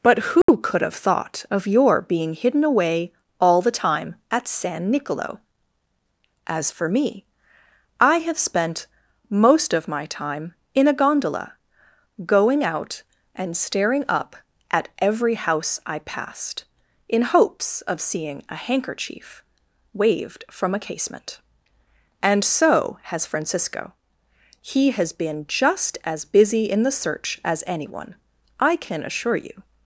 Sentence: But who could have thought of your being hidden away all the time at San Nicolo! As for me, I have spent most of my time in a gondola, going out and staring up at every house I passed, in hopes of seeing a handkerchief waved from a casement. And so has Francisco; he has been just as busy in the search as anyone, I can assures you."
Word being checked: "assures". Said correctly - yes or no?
no